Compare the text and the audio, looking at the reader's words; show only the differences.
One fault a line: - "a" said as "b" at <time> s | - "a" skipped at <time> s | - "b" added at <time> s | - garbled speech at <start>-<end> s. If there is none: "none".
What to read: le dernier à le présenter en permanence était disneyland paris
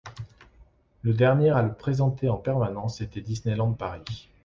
none